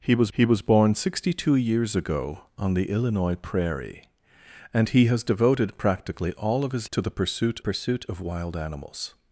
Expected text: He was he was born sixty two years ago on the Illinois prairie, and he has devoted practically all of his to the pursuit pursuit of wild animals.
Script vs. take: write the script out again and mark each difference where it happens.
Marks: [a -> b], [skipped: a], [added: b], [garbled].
He was he was born sixty two years ago on the Illinois prairie, and he has devoted practically all of his to the pursuit pursuit of wild animals.